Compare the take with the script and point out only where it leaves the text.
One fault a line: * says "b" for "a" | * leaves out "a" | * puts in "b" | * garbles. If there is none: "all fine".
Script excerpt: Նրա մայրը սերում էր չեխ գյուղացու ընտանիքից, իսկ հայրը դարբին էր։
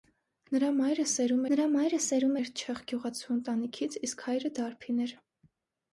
* puts in "նրա մայրը սերում"